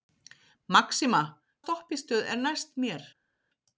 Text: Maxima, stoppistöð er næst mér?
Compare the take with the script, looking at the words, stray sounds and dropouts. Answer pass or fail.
pass